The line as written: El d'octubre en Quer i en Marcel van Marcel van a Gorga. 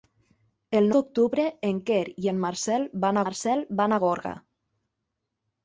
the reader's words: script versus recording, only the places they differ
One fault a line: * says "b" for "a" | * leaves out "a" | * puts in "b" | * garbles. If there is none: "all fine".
all fine